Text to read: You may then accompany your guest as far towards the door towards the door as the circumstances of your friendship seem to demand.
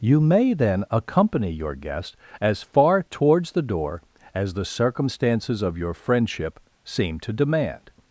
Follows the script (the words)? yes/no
no